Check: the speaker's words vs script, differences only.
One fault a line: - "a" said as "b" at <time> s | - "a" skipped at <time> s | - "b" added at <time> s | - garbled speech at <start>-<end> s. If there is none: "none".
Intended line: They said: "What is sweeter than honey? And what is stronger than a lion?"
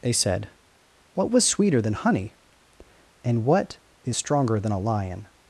- "is" said as "was" at 1.3 s